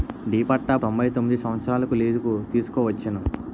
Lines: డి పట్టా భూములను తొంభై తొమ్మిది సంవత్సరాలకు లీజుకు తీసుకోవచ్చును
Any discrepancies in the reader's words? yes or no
yes